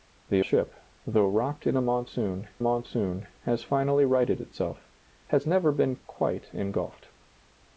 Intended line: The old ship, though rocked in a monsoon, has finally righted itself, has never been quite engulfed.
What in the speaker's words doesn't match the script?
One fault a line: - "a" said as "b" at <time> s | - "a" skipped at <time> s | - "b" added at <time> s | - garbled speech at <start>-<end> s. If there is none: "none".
- "old" skipped at 0.4 s
- "monsoon" added at 2.6 s